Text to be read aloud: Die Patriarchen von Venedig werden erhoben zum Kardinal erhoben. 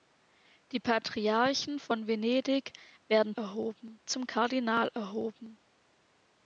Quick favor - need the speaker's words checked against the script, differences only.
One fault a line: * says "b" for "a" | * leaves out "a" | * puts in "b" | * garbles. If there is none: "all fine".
all fine